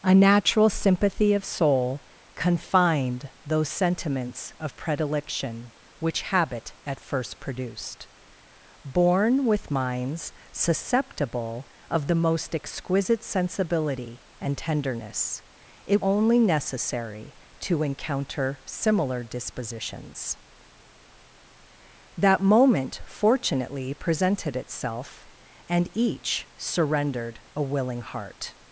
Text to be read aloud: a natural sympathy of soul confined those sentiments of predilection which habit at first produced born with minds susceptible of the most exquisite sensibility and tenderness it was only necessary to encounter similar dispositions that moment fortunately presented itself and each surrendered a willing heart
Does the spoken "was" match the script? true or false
false